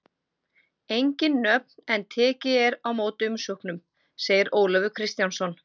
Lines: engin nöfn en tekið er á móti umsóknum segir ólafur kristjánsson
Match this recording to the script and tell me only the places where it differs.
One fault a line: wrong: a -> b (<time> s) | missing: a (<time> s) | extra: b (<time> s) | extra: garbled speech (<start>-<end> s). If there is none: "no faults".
no faults